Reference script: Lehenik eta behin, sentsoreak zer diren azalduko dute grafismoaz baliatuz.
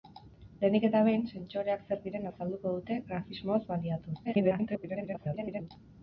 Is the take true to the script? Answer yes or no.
no